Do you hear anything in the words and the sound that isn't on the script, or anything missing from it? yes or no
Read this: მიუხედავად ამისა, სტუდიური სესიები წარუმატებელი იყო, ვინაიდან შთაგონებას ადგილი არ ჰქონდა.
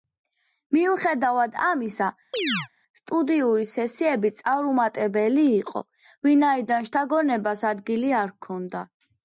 yes